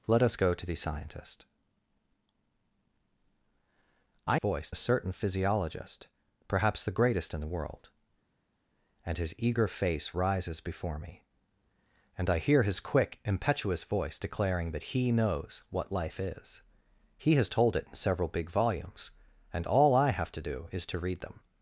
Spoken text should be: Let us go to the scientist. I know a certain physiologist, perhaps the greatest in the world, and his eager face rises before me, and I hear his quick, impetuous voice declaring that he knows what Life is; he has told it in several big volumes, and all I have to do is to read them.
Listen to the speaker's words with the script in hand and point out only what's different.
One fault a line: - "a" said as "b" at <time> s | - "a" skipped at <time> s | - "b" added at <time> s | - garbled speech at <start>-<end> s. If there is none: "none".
- "know" said as "voice" at 4.3 s